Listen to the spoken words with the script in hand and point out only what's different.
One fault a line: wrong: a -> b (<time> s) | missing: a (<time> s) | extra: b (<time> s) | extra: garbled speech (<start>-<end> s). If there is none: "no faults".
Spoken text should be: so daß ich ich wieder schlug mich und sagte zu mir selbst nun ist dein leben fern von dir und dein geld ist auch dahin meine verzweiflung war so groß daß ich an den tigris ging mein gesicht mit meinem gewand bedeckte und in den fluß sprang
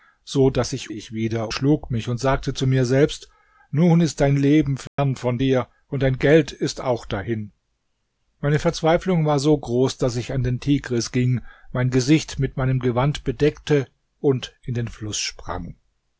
no faults